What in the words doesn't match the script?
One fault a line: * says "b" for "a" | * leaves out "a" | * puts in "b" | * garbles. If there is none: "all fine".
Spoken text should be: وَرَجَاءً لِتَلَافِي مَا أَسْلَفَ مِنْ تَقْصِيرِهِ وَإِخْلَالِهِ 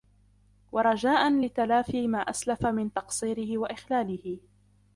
all fine